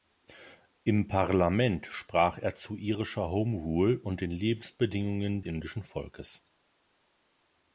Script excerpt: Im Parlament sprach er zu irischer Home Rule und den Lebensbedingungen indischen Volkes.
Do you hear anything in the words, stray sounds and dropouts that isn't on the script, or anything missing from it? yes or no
no